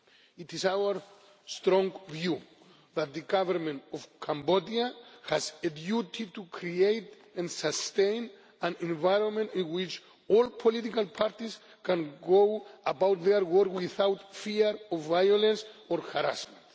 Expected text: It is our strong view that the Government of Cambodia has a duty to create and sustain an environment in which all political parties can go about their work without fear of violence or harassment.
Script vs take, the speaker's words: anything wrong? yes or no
no